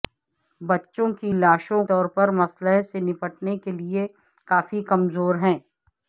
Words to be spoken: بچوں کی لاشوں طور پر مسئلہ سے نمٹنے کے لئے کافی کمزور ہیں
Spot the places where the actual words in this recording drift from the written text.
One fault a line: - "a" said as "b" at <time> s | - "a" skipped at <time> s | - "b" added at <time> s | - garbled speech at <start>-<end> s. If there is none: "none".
none